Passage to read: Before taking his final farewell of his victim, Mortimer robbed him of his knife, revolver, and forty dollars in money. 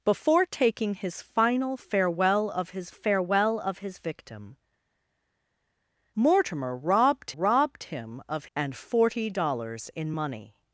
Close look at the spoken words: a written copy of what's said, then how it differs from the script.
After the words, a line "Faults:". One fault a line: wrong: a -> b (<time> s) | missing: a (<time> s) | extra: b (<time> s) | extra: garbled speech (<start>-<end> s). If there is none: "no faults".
Before taking his final farewell of his farewell of his victim, Mortimer robbed robbed him of and forty dollars in money.
Faults:
extra: farewell of his (2.9 s)
extra: robbed (7.3 s)
missing: his knife revolver (8.5 s)